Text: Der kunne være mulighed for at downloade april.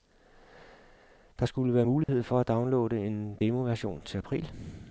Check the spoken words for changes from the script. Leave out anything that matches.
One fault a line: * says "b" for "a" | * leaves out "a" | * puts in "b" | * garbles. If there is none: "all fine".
* says "skulle" for "kunne"
* puts in "en demoversion til"